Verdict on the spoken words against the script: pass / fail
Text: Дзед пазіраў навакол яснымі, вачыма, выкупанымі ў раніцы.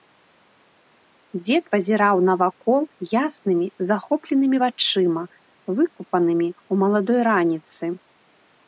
fail